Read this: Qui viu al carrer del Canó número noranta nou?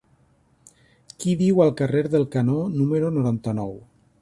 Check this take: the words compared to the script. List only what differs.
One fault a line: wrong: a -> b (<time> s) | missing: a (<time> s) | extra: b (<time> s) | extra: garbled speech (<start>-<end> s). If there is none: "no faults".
no faults